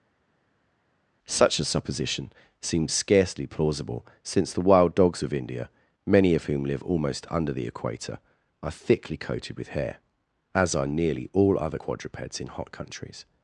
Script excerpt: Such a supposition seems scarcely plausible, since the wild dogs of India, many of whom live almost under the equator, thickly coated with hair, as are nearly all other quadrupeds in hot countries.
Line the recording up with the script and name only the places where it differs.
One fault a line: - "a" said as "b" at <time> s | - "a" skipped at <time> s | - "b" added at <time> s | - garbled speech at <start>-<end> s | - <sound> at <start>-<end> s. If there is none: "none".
- "are" added at 8.6 s